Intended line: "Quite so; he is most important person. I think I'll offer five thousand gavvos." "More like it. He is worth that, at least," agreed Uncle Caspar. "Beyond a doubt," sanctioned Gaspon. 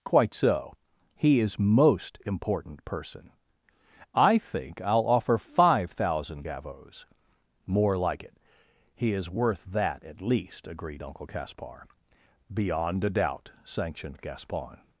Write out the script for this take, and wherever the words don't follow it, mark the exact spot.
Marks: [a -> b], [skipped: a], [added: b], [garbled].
"Quite so; he is most important person. I think I'll offer five thousand gavvos." "More like it. He is worth that, at least," agreed Uncle Caspar. "Beyond a doubt," sanctioned Gaspon.